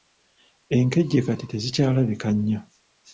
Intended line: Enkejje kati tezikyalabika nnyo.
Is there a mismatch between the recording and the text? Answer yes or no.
no